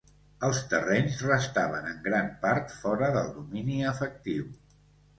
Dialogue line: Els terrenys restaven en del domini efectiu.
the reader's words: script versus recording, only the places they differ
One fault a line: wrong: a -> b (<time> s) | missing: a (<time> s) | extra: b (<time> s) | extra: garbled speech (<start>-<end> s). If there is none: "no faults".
extra: gran part fora (2.1 s)